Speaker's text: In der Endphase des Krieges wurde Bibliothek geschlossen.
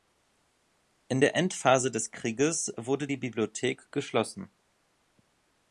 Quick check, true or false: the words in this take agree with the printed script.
false